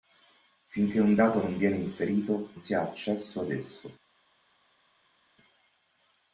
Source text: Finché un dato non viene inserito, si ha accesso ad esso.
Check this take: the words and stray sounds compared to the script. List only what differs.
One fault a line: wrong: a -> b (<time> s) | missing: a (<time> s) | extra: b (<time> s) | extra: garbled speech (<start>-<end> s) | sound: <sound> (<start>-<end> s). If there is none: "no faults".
no faults